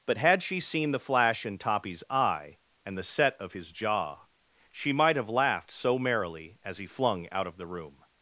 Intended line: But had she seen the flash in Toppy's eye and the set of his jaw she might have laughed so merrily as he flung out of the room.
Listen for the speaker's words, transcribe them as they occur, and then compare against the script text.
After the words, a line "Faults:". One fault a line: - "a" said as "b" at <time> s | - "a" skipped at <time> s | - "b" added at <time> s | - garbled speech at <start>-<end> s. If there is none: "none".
But had she seen the flash in Toppy's eye and the set of his jaw she might have laughed so merrily as he flung out of the room.
Faults:
none